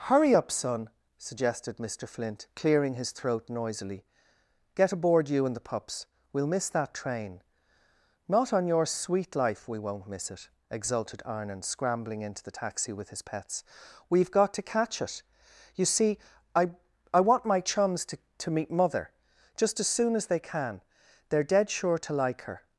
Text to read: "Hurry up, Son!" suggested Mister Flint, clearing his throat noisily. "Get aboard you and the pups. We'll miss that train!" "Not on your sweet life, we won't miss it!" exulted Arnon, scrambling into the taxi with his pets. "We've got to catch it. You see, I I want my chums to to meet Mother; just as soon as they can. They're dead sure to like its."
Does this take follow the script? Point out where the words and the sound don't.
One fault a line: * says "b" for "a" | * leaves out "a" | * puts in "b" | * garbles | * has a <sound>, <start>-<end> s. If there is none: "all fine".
* says "her" for "its"